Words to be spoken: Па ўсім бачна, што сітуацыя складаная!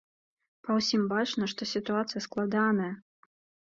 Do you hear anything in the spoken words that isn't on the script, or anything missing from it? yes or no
no